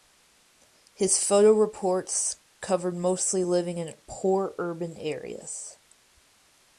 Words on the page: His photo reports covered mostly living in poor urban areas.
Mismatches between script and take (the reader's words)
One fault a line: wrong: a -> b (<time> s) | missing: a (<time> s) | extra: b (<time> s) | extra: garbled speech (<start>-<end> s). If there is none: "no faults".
no faults